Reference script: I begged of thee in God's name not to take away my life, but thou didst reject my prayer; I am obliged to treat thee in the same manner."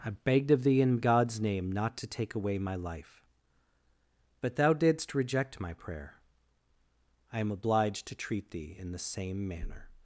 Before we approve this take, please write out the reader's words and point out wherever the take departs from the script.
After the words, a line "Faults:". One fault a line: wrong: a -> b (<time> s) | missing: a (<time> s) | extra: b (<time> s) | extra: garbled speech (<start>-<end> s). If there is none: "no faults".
I begged of thee in God's name not to take away my life, but thou didst reject my prayer; I am obliged to treat thee in the same manner."
Faults:
no faults